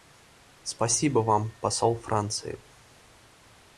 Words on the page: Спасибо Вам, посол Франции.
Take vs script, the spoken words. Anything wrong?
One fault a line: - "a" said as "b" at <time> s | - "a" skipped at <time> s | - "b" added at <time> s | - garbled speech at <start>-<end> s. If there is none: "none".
none